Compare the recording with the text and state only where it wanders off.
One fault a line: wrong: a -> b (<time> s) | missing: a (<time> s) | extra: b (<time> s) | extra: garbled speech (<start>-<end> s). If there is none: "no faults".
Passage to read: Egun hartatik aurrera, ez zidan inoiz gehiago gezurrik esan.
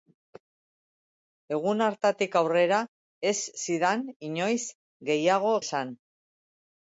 missing: gezurrik (5.5 s)